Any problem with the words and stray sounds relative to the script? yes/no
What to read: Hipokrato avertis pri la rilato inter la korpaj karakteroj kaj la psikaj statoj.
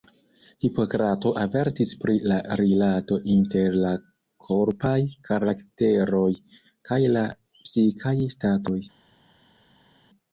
no